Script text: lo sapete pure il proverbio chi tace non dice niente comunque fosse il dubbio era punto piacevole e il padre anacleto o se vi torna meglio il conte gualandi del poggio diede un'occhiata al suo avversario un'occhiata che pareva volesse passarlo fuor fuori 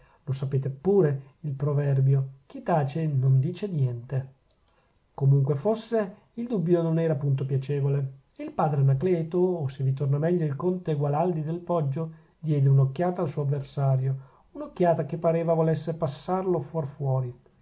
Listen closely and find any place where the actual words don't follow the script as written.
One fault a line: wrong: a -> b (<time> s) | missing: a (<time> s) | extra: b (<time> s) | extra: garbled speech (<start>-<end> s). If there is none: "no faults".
extra: non (6.8 s)